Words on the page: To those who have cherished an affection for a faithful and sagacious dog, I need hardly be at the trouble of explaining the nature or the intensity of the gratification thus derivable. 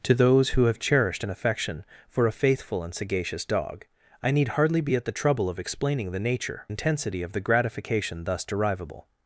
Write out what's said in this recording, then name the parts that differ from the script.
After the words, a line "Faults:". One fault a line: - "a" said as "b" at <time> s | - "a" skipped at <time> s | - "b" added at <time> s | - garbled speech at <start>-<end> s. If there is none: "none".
To those who have cherished an affection for a faithful and sagacious dog, I need hardly be at the trouble of explaining the nature intensity of the gratification thus derivable.
Faults:
- "or the" skipped at 6.7 s